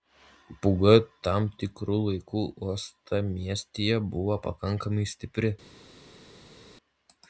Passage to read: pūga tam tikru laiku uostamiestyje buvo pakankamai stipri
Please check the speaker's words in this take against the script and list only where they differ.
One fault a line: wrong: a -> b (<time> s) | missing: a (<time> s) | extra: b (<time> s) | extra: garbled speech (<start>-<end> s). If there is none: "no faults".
no faults